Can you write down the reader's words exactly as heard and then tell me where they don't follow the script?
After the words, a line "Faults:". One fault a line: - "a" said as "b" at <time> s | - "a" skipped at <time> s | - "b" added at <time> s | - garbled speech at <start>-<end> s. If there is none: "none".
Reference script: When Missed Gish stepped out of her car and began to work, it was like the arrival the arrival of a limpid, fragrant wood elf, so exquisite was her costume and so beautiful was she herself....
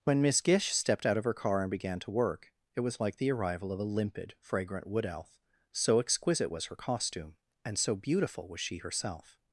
When Miss Gish stepped out of her car and began to work, it was like the arrival of a limpid, fragrant wood elf, so exquisite was her costume and so beautiful was she herself....
Faults:
- "Missed" said as "Miss" at 0.2 s
- "the arrival" skipped at 3.7 s